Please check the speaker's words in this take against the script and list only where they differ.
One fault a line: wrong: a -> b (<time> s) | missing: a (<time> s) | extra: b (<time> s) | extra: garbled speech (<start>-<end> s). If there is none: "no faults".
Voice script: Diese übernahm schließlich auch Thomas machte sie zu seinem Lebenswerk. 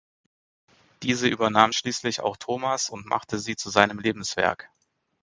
extra: und (2.9 s)